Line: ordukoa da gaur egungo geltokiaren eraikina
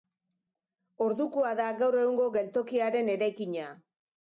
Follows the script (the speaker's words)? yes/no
yes